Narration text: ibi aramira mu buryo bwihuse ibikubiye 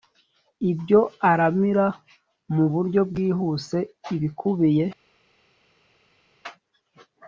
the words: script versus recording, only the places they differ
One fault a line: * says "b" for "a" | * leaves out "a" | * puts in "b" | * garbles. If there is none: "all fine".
* says "ibyo" for "ibi"